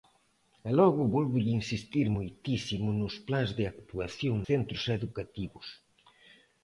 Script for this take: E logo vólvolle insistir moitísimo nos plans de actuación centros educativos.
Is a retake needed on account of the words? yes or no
no